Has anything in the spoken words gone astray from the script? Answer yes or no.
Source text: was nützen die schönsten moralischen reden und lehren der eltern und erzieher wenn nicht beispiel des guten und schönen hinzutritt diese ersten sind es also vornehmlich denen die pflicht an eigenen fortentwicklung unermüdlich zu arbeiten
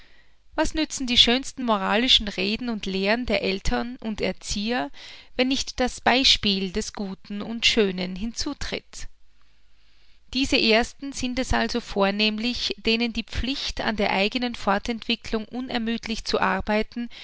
yes